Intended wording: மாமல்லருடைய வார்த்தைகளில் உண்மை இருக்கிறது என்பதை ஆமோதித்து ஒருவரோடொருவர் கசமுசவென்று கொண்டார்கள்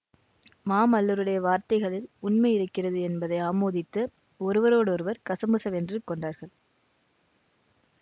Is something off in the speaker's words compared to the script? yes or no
no